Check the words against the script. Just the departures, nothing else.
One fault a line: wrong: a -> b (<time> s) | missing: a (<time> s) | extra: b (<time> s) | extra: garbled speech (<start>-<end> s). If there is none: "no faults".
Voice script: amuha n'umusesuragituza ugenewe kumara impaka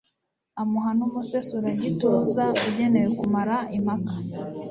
no faults